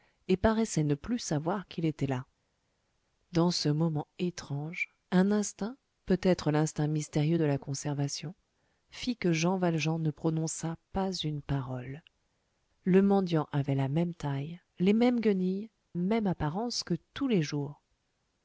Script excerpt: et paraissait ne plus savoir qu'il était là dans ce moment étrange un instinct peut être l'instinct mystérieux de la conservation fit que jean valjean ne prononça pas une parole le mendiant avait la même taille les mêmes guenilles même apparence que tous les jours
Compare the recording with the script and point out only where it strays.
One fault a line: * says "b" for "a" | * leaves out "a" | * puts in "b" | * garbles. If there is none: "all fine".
all fine